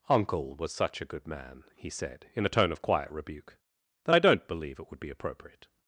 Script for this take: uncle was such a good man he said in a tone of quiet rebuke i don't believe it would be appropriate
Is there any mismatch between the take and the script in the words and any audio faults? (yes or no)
yes